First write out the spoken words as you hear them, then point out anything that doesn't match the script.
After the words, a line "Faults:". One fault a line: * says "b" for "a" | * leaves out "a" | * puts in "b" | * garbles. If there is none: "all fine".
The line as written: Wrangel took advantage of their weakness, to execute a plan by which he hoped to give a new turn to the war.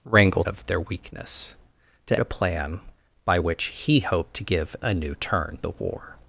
Wrangel of their weakness, to a plan by which he hoped to give a new turn the war.
Faults:
* leaves out "took advantage"
* leaves out "execute"
* leaves out "to"